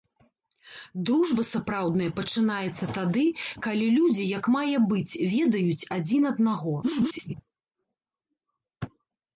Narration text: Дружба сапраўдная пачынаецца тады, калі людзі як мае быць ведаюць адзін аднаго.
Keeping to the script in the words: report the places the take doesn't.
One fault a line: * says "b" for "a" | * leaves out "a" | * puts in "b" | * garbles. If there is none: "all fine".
* garbles